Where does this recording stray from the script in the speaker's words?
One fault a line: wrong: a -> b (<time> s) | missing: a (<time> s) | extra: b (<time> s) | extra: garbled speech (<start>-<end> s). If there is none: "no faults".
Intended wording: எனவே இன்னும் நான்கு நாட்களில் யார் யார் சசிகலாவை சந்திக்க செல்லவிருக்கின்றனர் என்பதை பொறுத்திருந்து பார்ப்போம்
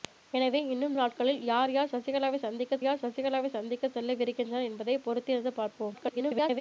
missing: நான்கு (0.9 s)
extra: யார் சசிகலாவை சந்திக்க (2.8 s)
extra: garbled speech (5.9-6.6 s)